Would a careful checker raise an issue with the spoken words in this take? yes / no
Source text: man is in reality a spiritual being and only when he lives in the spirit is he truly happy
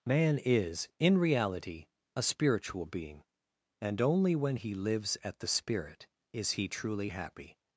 yes